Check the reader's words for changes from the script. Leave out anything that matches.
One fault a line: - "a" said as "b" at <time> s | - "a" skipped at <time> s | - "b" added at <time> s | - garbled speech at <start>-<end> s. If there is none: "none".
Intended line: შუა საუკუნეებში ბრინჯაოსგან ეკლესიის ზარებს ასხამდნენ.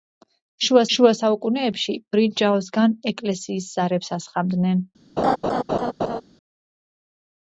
- "შუა" added at 1.0 s